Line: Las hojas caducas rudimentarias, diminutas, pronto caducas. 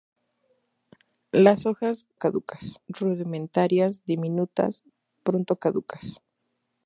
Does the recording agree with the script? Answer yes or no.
yes